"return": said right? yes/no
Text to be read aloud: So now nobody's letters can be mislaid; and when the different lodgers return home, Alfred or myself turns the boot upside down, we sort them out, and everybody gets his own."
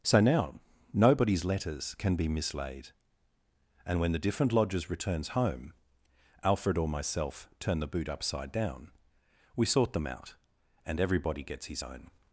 no